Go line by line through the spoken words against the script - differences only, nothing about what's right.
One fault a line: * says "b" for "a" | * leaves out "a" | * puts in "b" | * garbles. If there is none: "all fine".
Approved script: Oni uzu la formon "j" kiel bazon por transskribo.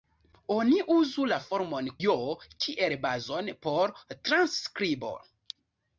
all fine